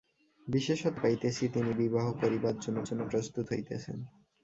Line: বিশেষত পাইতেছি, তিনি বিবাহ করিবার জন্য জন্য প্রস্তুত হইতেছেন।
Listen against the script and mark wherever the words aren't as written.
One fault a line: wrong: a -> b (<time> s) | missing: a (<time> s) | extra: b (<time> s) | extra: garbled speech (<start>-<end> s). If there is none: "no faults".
no faults